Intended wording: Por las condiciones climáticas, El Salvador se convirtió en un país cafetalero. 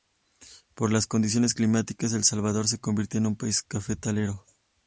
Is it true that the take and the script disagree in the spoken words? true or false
false